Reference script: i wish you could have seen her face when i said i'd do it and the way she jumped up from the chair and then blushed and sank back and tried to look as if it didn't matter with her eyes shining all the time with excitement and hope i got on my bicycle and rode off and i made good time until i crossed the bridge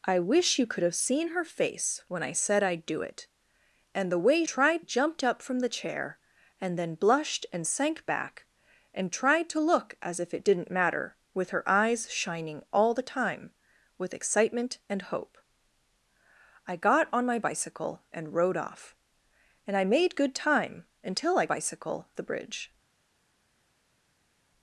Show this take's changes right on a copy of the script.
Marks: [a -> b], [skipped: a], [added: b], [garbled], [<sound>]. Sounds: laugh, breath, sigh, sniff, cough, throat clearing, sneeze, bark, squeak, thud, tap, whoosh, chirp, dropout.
i wish you could have seen her face when i said i'd do it and the way [she -> tried] jumped up from the chair and then blushed and sank back and tried to look as if it didn't matter with her eyes shining all the time with excitement and hope i got on my bicycle and rode off and i made good time until i [crossed -> bicycle] the bridge